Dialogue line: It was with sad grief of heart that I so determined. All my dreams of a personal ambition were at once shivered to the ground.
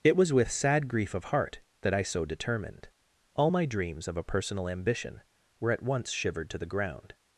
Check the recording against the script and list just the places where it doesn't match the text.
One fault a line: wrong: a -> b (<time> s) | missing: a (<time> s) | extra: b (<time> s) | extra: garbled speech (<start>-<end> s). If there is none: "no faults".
no faults